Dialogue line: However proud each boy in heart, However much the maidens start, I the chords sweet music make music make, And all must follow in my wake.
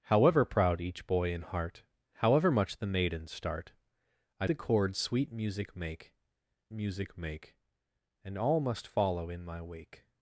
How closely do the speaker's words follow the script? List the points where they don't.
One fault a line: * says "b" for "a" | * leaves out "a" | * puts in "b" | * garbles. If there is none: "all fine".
all fine